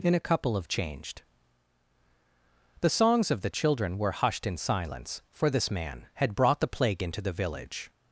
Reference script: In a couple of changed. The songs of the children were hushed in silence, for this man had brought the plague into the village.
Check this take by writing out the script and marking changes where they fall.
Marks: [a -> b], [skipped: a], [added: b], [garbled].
In a couple of changed. The songs of the children were hushed in silence, for this man had brought the plague into the village.